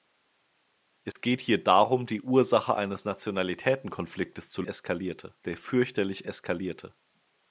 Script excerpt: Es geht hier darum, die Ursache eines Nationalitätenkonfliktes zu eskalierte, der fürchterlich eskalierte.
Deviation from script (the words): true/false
false